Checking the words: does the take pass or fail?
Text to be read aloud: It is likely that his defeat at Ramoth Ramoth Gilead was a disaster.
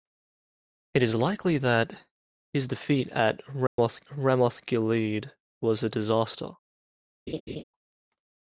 pass